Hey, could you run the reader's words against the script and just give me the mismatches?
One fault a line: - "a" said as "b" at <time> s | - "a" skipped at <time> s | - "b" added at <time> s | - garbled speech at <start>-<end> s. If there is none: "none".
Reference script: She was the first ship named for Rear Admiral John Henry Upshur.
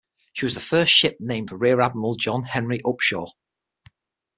none